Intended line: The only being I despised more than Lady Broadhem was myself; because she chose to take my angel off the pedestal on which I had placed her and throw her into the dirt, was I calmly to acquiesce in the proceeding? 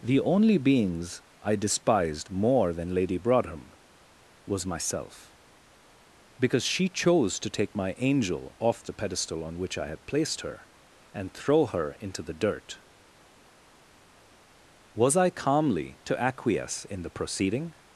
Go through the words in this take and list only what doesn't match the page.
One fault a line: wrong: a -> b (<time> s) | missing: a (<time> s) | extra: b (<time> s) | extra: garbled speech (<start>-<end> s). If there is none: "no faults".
wrong: being -> beings (0.6 s)